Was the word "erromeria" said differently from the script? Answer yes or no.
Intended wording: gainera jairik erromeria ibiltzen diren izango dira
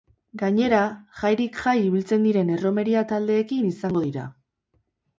yes